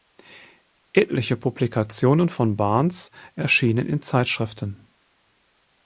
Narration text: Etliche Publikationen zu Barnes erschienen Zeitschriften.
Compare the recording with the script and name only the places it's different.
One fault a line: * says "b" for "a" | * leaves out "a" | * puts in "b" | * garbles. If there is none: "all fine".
* says "von" for "zu"
* puts in "in"